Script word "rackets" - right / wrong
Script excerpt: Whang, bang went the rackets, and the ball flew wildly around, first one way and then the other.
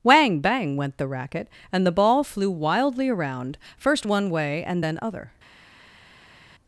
wrong